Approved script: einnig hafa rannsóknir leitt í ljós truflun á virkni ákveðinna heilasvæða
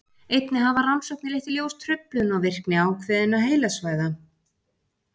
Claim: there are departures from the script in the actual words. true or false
false